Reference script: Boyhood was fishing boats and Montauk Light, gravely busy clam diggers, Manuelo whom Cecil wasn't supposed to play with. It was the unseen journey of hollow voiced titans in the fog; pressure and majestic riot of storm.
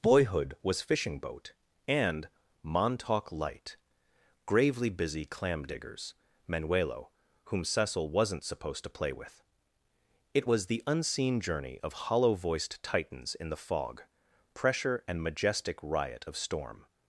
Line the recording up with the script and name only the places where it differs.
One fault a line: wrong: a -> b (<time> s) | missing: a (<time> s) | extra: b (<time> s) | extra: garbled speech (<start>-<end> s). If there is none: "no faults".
wrong: boats -> boat (1.2 s)